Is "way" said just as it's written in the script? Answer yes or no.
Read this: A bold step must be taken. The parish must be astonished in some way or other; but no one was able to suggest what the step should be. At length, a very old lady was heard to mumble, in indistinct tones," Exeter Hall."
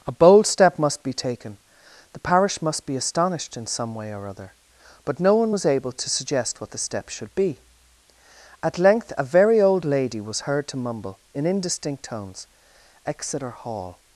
yes